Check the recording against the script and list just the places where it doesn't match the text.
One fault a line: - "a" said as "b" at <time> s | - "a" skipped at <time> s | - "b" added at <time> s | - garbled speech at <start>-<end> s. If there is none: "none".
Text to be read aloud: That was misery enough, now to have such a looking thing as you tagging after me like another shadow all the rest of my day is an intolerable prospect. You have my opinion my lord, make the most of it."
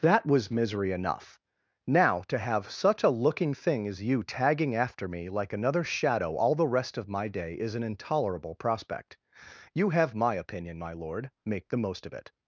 none